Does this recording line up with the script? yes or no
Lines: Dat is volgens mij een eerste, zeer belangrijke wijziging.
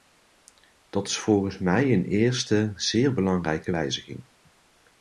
yes